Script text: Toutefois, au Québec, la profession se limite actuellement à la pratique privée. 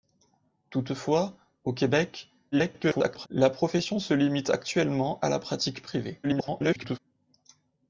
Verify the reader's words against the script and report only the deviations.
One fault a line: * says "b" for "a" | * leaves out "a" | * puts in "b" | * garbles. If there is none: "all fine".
* garbles
* garbles